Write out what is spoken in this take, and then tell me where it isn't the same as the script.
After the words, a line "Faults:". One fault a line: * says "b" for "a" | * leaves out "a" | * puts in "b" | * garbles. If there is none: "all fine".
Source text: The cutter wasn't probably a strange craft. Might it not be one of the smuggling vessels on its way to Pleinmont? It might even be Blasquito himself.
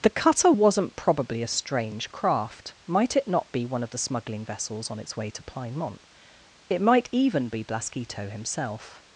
The cutter wasn't probably a strange craft. Might it not be one of the smuggling vessels on its way to Pleinmont? It might even be Blasquito himself.
Faults:
all fine